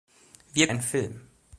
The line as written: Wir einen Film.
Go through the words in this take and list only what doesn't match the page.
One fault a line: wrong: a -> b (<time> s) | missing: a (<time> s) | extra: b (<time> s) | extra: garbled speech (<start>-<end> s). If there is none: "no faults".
no faults